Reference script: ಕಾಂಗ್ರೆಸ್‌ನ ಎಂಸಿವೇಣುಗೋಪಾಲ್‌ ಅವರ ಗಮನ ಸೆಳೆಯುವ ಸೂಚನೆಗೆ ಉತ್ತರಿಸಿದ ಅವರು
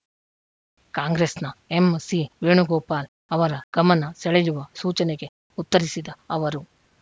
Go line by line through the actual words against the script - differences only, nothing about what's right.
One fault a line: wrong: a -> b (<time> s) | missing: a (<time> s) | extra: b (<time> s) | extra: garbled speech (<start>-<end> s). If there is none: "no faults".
no faults